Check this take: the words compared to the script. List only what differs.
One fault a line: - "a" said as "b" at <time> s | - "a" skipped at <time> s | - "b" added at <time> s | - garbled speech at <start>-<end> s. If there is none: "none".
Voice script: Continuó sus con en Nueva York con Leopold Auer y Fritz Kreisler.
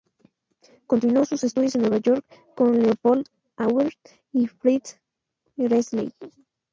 - "con" said as "estudios" at 1.4 s